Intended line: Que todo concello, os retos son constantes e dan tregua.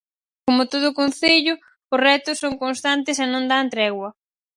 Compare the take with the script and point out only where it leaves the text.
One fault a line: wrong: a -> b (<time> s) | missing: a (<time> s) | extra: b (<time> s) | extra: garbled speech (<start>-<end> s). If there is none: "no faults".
wrong: Que -> Como (0.5 s)
extra: non (3.3 s)